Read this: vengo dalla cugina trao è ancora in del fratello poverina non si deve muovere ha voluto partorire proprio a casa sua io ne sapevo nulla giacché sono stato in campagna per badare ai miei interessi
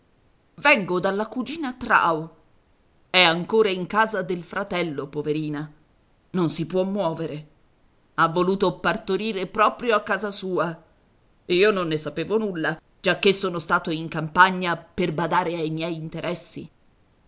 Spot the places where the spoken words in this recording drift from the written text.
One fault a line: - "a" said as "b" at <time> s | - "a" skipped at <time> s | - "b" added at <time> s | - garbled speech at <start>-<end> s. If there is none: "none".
- "casa" added at 3.9 s
- "deve" said as "può" at 6.7 s
- "non" added at 11.7 s